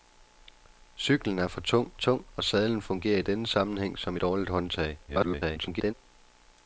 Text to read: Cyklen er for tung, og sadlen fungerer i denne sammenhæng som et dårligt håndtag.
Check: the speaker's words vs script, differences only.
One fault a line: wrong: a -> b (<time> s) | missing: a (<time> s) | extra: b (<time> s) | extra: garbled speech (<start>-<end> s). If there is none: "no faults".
extra: tung (2.0 s)
missing: et (4.2 s)
extra: garbled speech (5.1-5.9 s)